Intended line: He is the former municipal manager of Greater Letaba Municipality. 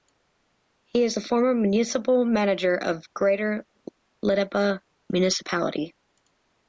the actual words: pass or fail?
pass